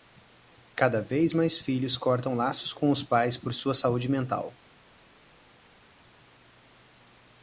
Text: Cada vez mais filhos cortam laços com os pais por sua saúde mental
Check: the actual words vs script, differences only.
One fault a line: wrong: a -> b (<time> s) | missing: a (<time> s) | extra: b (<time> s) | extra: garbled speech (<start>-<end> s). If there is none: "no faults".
no faults